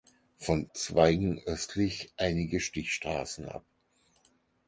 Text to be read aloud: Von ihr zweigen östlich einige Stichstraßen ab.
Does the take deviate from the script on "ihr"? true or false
true